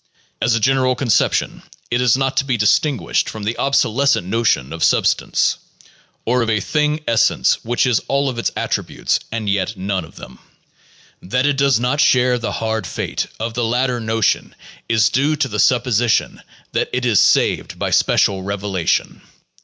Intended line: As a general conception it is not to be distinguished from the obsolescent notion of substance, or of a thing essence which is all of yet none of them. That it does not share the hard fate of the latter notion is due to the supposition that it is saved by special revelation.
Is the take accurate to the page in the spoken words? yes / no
no